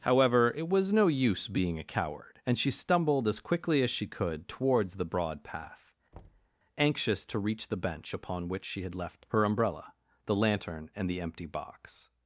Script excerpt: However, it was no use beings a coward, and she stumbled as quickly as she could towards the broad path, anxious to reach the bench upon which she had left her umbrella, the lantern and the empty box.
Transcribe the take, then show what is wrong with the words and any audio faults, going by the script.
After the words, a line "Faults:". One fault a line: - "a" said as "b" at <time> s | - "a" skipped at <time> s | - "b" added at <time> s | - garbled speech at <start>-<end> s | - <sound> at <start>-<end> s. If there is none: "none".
However, it was no use being a coward, and she stumbled as quickly as she could towards the broad path, anxious to reach the bench upon which she had left her umbrella, the lantern and the empty box.
Faults:
- "beings" said as "being" at 1.5 s
- thud at 6.1-6.5 s